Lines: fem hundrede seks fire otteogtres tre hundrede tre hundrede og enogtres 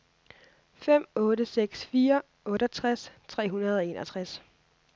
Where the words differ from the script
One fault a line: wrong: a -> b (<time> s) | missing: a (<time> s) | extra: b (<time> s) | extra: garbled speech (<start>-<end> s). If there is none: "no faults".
wrong: hundrede -> otte (1.1 s)
missing: tre hundrede (3.8 s)